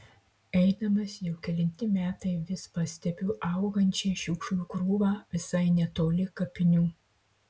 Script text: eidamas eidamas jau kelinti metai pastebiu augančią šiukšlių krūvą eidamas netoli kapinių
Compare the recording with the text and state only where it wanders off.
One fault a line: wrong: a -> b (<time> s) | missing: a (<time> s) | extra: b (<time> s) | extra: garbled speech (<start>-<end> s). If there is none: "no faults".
missing: eidamas (1.2 s)
extra: vis (2.5 s)
wrong: eidamas -> visai (5.4 s)